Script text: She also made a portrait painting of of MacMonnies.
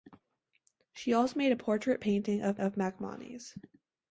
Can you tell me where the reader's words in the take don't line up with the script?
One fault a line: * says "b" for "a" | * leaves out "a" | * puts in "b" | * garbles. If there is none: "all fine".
all fine